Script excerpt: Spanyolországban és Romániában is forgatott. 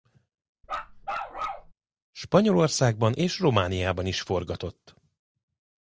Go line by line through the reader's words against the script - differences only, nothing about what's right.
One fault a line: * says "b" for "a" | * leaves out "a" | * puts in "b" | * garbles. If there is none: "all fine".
all fine